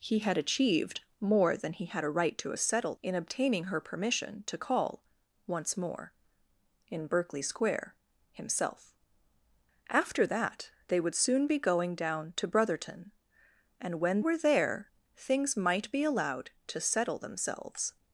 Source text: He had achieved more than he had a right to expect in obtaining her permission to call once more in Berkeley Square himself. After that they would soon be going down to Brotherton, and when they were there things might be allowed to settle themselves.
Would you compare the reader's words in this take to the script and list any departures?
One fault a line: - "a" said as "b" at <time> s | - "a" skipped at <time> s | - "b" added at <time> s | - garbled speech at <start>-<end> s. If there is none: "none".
- "expect" said as "settle" at 2.5 s
- "they" skipped at 14.2 s